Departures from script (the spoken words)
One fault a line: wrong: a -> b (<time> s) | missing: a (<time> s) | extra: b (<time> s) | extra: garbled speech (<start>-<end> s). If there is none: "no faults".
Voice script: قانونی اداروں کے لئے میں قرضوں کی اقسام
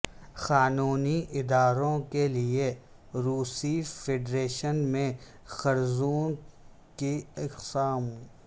extra: روسی فیڈریشن (3.1 s)